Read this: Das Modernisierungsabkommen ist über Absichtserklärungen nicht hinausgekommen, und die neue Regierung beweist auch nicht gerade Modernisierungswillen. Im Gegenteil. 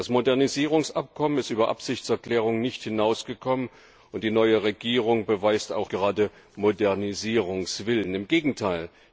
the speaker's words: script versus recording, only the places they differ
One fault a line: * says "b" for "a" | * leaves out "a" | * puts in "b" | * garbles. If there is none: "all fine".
* leaves out "nicht"